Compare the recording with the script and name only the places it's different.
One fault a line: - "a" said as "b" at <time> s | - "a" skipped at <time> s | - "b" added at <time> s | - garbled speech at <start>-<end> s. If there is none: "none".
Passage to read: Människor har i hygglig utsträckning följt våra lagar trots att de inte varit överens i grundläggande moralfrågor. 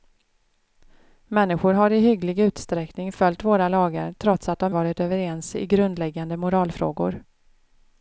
- "inte" skipped at 4.7 s